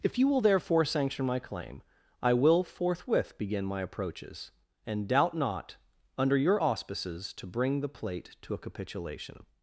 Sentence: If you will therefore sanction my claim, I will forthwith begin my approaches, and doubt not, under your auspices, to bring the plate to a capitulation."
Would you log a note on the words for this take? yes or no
no